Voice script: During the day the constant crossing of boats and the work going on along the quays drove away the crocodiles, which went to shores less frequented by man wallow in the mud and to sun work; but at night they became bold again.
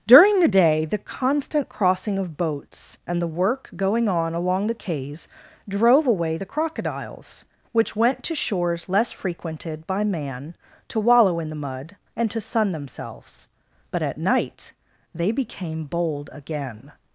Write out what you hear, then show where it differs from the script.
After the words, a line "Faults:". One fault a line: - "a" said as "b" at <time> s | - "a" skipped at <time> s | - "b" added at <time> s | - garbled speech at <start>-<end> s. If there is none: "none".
During the day the constant crossing of boats and the work going on along the quays drove away the crocodiles, which went to shores less frequented by man to wallow in the mud and to sun themselves; but at night they became bold again.
Faults:
- "to" added at 10.9 s
- "work" said as "themselves" at 12.7 s